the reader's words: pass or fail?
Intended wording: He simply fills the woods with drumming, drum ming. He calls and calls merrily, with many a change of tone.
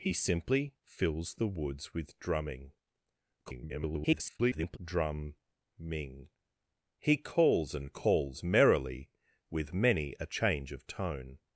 fail